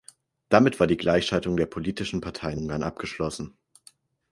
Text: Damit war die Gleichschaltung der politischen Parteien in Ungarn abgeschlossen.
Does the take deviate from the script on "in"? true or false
true